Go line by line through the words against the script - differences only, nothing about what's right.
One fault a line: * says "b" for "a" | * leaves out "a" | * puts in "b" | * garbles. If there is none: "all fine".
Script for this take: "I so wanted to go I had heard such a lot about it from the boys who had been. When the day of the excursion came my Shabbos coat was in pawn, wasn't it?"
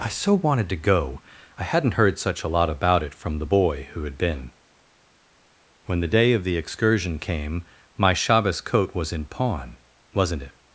* says "hadn't" for "had"
* says "boy" for "boys"